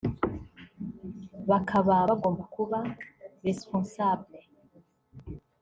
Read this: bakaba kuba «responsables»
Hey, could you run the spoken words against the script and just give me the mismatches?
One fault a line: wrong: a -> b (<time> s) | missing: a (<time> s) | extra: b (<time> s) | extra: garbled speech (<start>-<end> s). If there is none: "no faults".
extra: bagomba (2.1 s)